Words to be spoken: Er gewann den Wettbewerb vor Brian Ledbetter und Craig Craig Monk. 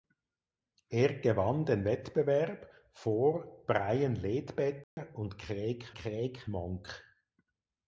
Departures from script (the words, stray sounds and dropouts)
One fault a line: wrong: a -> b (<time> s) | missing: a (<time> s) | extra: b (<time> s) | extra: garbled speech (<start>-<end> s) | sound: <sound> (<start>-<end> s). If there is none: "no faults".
sound: dropout (4.8-5.0 s)